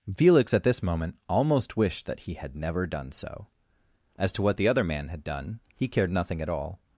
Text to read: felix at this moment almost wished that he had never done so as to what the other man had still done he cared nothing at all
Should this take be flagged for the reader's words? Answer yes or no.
yes